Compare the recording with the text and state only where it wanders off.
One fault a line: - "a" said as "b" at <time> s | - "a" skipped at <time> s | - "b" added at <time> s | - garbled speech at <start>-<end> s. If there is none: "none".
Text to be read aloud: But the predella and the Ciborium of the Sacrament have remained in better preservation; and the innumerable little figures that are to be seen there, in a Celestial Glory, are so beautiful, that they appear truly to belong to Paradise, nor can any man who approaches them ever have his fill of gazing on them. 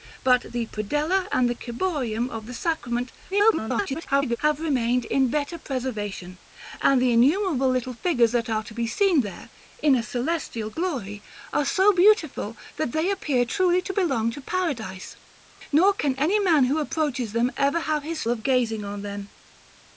- garbled speech at 3.3-4.4 s
- "fill" skipped at 18.2 s